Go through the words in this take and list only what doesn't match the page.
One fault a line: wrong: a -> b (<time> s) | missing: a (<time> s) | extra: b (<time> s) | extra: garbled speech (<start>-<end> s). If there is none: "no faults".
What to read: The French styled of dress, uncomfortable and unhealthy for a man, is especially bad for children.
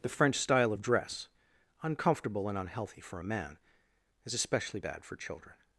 wrong: styled -> style (0.3 s)